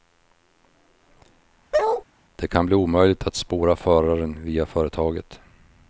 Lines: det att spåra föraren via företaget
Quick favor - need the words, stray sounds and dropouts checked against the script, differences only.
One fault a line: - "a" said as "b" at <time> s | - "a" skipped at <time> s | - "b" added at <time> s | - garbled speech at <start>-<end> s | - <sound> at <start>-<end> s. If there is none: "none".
- bark at 1.7-2.0 s
- "kan bli omöjligt" added at 2.5 s